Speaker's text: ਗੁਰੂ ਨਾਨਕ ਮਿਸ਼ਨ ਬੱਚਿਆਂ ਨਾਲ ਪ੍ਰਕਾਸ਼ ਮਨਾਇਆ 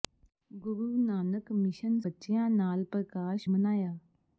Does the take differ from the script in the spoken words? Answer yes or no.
no